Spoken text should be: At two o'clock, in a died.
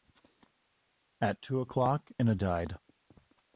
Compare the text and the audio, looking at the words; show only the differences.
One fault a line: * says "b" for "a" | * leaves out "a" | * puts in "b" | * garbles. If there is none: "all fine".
all fine